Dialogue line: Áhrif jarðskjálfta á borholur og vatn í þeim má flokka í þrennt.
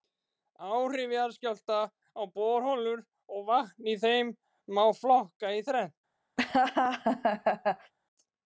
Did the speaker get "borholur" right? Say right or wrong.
right